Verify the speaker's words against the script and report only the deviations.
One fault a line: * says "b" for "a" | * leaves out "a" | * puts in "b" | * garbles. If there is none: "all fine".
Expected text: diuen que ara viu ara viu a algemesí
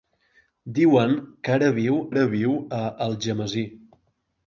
all fine